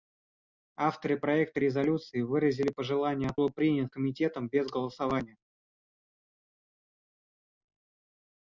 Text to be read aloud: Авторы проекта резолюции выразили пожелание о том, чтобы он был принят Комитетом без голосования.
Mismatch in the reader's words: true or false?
true